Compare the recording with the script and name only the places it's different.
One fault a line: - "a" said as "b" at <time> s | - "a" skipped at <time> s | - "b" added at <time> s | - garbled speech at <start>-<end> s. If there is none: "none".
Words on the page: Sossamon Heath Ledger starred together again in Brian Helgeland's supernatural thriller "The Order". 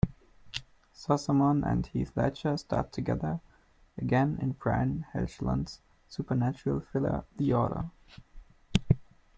- "and" added at 1.6 s